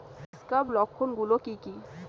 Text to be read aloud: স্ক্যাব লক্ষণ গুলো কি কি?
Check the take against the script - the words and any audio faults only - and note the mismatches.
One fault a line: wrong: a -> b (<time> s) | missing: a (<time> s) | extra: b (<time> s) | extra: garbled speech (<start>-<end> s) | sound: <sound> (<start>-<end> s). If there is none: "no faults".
no faults